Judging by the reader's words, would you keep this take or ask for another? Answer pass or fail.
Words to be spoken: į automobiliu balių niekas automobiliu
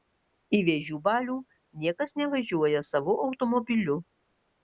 fail